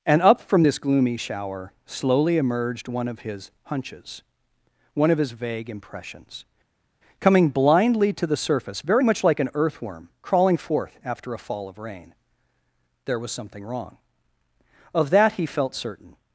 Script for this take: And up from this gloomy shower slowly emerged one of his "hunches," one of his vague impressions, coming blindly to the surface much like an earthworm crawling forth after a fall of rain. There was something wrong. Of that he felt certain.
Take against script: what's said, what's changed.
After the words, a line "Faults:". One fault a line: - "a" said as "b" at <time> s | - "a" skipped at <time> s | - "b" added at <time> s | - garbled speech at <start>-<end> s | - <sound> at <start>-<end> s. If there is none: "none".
And up from this gloomy shower slowly emerged one of his "hunches," one of his vague impressions, coming blindly to the surface very much like an earthworm crawling forth after a fall of rain. There was something wrong. Of that he felt certain.
Faults:
- "very" added at 8.8 s